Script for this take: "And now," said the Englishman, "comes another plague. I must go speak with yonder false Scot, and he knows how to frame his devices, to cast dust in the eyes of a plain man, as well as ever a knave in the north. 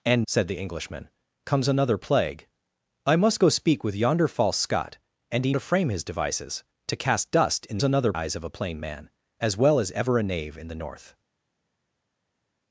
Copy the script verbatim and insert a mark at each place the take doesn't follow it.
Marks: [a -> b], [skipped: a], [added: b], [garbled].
"And [skipped: now,"] said the Englishman, "comes another plague. I must go speak with yonder false Scot, and he [skipped: knows how] to frame his devices, to cast dust in [the -> another] eyes of a plain man, as well as ever a knave in the north.